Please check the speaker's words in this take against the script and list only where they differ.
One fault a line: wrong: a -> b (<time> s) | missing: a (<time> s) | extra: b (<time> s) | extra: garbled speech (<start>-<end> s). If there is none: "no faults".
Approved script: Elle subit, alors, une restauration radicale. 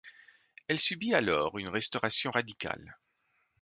no faults